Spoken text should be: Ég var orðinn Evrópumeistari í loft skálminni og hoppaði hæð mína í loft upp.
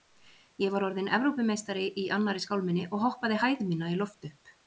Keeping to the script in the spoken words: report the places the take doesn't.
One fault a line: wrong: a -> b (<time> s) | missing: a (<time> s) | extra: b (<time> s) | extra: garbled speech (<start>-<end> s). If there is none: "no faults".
wrong: loft -> annarri (2.2 s)